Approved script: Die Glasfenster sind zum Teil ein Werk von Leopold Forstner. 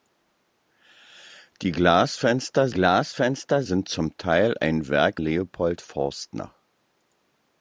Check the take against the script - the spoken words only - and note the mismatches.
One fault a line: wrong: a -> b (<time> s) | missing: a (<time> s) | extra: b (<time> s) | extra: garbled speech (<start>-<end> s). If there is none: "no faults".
extra: Glasfenster (2.7 s)
missing: von (5.2 s)